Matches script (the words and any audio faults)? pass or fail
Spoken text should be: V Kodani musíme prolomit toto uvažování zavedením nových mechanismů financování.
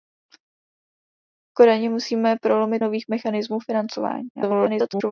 fail